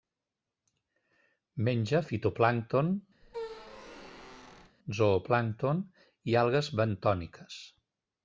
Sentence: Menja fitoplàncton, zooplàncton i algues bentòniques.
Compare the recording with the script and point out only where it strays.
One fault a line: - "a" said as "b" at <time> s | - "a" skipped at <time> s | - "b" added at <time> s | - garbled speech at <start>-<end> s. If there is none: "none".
none